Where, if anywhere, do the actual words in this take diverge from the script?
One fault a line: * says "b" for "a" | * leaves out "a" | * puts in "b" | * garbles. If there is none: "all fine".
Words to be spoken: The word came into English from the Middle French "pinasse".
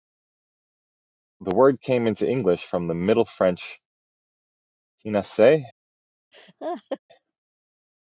all fine